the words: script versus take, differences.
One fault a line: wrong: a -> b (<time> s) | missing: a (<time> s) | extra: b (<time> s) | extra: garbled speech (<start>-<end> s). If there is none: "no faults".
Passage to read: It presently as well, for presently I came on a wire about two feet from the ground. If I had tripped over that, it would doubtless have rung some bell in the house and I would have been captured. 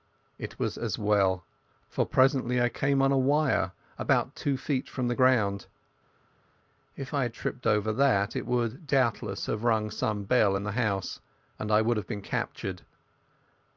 wrong: presently -> was (0.6 s)